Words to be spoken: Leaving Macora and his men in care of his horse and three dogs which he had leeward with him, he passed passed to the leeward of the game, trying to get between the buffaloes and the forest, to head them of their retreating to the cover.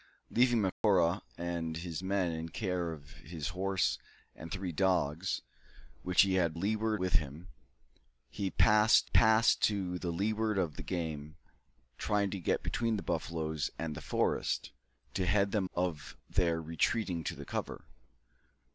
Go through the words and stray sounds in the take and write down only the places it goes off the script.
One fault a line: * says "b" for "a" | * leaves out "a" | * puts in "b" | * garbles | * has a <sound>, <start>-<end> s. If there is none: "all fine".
* has a dropout, 0.7-0.8 s